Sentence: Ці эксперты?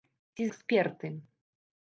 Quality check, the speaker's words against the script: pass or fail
pass